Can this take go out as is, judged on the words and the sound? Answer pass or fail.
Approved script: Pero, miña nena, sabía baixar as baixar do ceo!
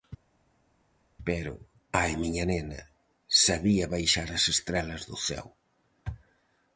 fail